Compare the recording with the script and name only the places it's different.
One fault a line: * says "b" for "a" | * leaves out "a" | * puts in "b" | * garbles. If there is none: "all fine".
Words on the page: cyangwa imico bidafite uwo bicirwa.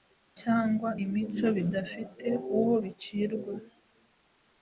all fine